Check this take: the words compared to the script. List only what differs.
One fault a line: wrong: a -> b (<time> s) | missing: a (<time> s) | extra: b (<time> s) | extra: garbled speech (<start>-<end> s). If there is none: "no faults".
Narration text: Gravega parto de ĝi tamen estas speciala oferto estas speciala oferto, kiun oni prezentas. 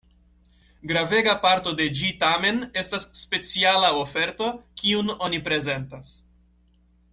missing: estas speciala oferto (4.5 s)